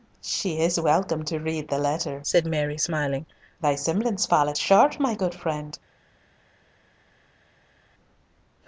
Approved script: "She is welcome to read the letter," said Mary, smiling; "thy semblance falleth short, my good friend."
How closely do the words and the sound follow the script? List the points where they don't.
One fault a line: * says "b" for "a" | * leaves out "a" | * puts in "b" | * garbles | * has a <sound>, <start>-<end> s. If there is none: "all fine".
all fine